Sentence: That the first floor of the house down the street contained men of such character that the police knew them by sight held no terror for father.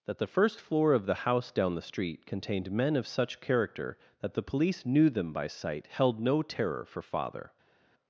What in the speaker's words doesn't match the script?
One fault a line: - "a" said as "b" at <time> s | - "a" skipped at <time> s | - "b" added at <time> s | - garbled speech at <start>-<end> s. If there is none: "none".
none